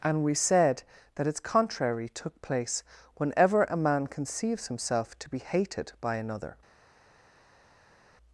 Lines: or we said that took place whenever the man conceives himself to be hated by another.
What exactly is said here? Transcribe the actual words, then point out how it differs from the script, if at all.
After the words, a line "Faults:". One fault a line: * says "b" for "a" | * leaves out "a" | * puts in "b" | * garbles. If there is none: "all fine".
and we said that its contrary took place whenever a man conceives himself to be hated by another.
Faults:
* says "and" for "or"
* puts in "its contrary"
* says "a" for "the"